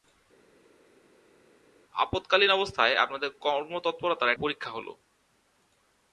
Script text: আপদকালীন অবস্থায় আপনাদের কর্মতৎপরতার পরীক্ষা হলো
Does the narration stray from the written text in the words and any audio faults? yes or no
no